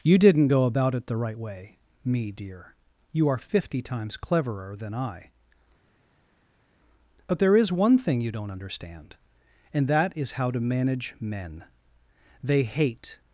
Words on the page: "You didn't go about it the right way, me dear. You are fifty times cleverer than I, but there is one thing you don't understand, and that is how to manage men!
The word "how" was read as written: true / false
true